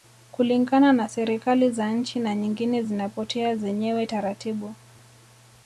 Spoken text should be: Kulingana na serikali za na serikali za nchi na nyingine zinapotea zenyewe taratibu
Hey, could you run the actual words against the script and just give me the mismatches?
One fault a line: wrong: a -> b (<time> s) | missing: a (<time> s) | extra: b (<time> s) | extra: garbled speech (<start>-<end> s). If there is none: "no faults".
missing: na serikali za (1.9 s)